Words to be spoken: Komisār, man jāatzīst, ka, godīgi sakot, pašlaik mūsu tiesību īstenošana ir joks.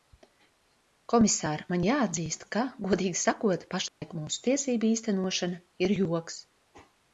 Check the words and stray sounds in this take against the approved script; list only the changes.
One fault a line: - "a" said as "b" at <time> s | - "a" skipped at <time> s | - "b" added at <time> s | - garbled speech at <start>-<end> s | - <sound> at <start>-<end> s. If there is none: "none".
- dropout at 3.9-4.0 s